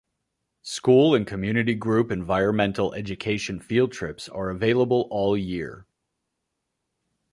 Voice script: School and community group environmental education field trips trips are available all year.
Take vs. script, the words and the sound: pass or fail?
fail